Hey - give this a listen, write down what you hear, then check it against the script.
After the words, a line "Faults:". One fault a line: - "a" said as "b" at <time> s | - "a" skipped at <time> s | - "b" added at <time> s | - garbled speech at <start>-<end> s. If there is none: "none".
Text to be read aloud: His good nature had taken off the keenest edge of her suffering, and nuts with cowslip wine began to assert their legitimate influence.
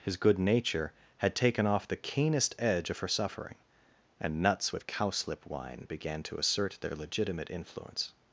His good nature had taken off the keenest edge of her suffering, and nuts with cowslip wine began to assert their legitimate influence.
Faults:
none